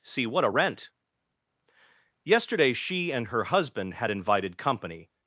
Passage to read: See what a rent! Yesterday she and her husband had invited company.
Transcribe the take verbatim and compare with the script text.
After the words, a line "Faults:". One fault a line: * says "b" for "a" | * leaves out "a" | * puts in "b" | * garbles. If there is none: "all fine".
See what a rent! Yesterday she and her husband had invited company.
Faults:
all fine